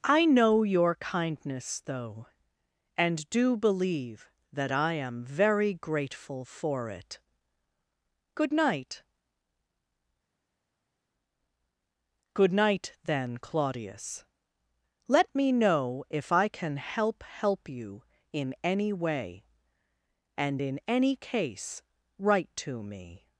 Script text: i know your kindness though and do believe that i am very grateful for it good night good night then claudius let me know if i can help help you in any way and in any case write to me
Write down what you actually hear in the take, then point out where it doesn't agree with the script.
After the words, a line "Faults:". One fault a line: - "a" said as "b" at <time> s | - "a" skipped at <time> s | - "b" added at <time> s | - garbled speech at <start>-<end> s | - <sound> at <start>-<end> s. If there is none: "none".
i know your kindness though and do believe that i am very grateful for it good night good night then claudius let me know if i can help help you in any way and in any case write to me
Faults:
none